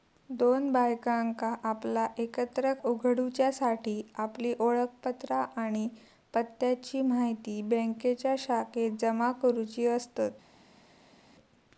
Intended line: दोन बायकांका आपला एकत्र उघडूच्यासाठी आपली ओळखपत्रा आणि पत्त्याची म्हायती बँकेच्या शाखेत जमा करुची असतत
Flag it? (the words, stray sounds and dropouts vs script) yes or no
no